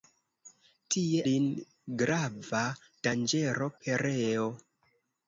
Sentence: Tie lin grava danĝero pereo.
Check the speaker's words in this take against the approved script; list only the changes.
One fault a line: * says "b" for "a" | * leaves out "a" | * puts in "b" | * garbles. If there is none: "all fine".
all fine